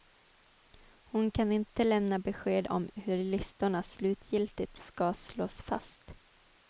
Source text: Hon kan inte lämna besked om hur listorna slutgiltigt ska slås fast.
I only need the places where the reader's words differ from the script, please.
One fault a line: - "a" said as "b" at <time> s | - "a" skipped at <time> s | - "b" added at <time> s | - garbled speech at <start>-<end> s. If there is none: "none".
none